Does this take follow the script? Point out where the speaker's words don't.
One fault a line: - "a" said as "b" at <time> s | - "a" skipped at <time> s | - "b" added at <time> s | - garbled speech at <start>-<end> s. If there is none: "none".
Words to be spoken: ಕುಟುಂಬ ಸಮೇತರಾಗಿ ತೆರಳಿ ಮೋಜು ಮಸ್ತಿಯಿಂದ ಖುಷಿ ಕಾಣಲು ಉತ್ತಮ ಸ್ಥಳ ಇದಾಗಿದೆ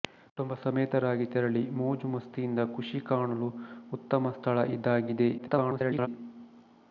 - garbled speech at 5.4-6.1 s